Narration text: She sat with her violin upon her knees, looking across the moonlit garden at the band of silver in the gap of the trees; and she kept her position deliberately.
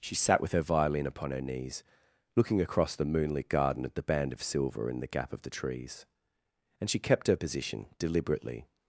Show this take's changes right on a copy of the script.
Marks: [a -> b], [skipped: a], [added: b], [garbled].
She sat with her violin upon her knees, looking across the moonlit garden at the band of silver in the gap of the trees; and she kept her position deliberately.